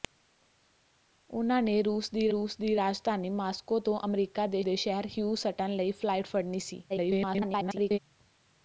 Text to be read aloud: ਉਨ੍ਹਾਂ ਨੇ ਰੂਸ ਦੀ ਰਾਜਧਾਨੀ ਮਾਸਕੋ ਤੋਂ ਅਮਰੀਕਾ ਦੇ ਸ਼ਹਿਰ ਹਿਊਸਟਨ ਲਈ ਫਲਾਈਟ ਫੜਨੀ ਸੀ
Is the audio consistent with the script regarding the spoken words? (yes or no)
no